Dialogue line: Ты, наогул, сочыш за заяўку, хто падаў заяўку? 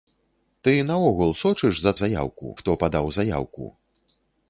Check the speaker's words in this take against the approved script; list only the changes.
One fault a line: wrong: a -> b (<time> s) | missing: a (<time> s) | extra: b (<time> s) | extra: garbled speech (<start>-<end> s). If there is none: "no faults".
no faults